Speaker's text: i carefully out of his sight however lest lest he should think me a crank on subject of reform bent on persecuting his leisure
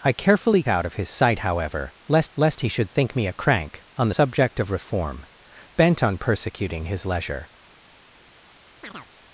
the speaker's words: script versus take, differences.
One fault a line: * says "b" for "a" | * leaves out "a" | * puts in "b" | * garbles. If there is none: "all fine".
all fine